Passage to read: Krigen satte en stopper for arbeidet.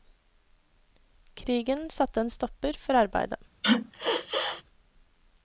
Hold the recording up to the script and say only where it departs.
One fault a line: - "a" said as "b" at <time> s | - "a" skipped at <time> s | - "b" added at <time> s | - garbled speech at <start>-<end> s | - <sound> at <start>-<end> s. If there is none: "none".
- sneeze at 3.6-4.6 s